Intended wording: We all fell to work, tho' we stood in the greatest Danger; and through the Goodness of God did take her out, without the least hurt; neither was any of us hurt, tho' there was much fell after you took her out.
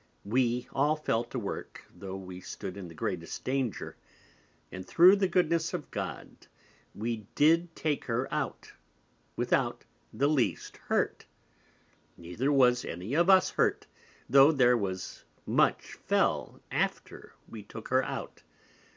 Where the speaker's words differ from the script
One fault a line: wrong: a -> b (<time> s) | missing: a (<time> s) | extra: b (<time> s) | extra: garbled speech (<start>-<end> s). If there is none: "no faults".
extra: we (7.0 s)
wrong: you -> we (17.5 s)